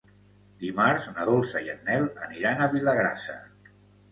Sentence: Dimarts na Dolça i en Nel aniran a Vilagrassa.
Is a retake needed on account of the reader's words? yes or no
no